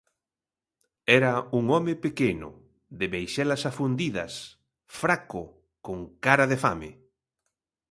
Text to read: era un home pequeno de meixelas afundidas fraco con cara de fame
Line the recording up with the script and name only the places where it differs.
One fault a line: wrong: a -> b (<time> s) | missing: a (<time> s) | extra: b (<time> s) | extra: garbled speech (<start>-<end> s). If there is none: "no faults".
no faults